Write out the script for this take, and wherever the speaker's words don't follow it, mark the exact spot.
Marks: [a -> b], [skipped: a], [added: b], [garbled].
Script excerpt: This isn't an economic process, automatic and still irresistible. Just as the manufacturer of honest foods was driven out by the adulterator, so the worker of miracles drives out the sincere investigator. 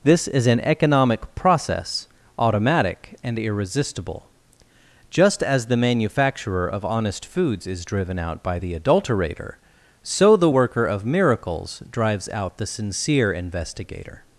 This [isn't -> is] an economic process, automatic and [skipped: still] irresistible. Just as the manufacturer of honest foods [was -> is] driven out by the adulterator, so the worker of miracles drives out the sincere investigator.